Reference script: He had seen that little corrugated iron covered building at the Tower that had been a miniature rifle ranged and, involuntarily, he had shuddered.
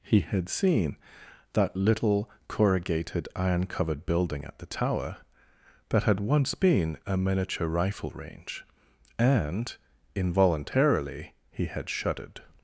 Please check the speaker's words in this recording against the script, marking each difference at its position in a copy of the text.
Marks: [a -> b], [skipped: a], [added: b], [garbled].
He had seen that little corrugated iron covered building at the Tower that had [added: once] been a miniature rifle [ranged -> range] and, involuntarily, he had shuddered.